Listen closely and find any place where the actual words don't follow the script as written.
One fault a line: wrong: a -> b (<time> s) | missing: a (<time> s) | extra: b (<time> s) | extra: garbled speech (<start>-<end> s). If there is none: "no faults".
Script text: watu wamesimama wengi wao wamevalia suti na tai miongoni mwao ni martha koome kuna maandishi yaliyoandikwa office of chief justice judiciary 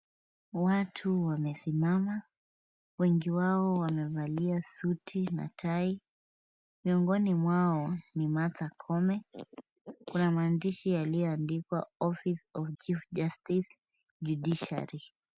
no faults